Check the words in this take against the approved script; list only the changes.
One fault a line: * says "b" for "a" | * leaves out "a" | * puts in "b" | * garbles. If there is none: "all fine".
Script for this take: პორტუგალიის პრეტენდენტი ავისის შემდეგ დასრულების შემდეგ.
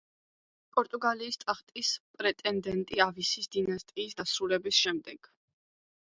* puts in "ტახტის"
* says "დინასტიის" for "შემდეგ"